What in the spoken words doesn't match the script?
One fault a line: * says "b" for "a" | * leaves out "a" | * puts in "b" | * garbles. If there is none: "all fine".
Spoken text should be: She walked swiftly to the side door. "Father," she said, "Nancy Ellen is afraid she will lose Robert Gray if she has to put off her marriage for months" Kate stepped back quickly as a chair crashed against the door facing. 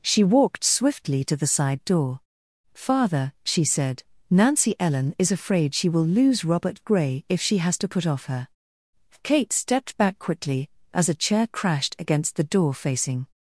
* leaves out "marriage for months"